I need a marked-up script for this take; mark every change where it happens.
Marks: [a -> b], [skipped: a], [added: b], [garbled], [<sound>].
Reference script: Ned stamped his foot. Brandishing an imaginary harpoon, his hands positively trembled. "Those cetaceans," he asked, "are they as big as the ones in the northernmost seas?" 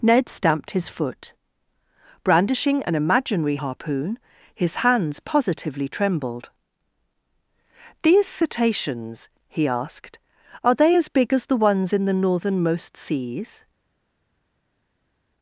Ned stamped his foot. Brandishing an imaginary harpoon, his hands positively trembled. ["Those -> These] cetaceans," he asked, "are they as big as the ones in the northernmost seas?"